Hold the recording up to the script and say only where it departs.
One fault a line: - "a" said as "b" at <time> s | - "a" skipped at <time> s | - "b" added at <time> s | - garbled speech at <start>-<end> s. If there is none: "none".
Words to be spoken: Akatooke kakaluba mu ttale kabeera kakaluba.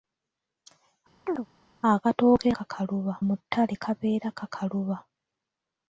none